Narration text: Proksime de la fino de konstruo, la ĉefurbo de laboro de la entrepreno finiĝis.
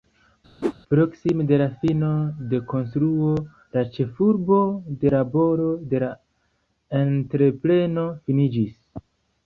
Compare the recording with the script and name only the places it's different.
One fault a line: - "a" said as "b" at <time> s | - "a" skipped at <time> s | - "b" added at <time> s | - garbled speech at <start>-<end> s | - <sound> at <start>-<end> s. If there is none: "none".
- whoosh at 0.6-0.7 s